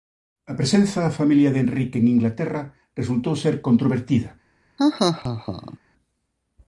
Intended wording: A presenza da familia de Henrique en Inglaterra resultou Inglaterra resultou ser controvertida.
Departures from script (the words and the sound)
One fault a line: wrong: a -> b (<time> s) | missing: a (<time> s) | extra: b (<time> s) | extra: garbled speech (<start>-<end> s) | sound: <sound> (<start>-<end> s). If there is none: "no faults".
missing: Inglaterra resultou (3.3 s)
sound: laugh (4.8-5.8 s)